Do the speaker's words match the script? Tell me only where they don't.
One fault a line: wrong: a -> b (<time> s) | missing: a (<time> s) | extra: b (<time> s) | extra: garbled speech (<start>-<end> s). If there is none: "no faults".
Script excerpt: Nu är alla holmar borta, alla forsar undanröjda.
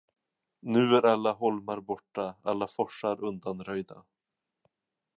no faults